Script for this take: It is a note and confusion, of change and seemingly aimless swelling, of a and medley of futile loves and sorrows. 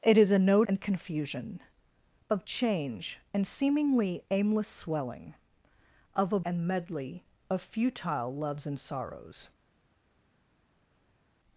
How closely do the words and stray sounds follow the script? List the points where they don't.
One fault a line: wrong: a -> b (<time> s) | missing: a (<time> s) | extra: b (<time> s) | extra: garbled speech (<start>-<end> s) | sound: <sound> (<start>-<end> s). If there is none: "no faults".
no faults